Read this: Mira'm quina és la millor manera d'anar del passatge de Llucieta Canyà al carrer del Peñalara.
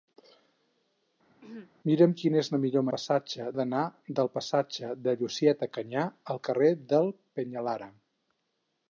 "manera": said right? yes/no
no